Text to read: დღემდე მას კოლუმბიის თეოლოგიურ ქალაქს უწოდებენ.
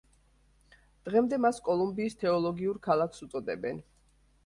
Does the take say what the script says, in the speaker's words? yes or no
yes